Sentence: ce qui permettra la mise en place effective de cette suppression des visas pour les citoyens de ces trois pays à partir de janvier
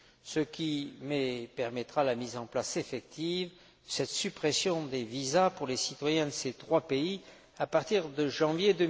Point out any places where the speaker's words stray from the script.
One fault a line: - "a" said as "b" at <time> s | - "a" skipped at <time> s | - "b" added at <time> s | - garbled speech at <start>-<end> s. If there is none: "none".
none